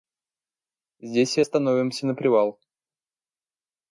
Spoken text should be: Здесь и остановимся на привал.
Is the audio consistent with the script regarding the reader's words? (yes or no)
yes